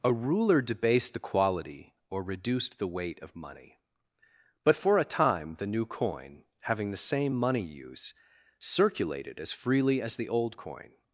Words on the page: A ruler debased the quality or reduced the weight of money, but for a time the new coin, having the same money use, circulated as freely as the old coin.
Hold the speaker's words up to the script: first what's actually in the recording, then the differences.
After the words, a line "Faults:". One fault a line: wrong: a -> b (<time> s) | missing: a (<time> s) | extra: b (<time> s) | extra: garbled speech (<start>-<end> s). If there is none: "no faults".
A ruler debased the quality or reduced the weight of money, but for a time the new coin, having the same money use, circulated as freely as the old coin.
Faults:
no faults